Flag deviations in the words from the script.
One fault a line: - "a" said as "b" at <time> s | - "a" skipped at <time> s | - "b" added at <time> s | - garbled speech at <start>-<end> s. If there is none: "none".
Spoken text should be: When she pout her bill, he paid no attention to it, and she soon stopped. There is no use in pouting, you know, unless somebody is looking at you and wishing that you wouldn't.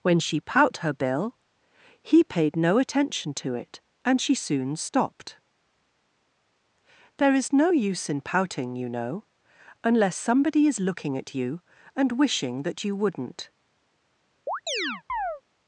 none